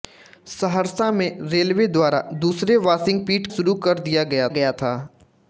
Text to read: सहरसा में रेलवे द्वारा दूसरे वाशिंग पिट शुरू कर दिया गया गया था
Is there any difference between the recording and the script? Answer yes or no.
no